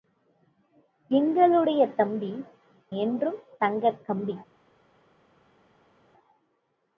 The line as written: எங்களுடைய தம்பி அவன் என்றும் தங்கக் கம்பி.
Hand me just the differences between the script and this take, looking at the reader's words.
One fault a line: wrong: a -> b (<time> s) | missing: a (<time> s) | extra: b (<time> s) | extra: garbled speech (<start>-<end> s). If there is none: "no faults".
missing: அவன் (2.3 s)